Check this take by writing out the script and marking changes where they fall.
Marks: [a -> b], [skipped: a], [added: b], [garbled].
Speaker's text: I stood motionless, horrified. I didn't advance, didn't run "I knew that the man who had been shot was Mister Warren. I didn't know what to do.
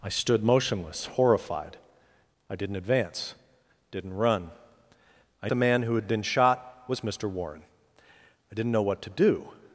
I stood motionless, horrified. I didn't advance, didn't run "I [skipped: knew that] the man who had been shot was Mister Warren. I didn't know what to do.